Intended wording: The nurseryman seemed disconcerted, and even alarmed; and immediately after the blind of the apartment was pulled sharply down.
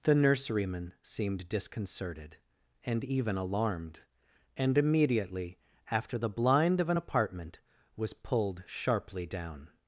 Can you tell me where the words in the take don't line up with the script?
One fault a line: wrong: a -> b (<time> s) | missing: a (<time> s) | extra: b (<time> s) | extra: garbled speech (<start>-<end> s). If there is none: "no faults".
wrong: the -> an (6.9 s)